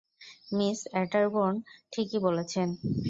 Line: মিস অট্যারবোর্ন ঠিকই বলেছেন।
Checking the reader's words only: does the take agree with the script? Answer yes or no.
yes